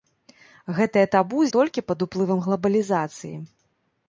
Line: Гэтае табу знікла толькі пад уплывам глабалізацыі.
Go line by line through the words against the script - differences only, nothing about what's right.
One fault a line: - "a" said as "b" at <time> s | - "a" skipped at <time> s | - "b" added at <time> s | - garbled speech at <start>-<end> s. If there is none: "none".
- "знікла" skipped at 1.4 s